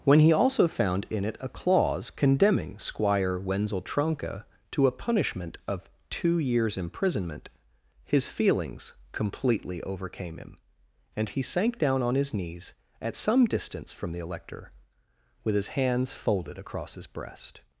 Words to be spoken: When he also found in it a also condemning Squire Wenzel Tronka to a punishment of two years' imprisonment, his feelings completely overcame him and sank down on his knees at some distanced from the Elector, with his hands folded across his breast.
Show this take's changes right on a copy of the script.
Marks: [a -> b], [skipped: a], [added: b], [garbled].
When he also found in it a [also -> clause] condemning Squire Wenzel Tronka to a punishment of two years' imprisonment, his feelings completely overcame him and [added: he] sank down on his knees at some [distanced -> distance] from the Elector, with his hands folded across his breast.